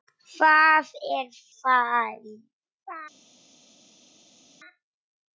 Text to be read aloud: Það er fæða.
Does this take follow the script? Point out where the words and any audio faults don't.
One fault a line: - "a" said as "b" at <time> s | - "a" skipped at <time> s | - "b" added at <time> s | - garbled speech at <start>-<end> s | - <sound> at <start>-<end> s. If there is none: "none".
none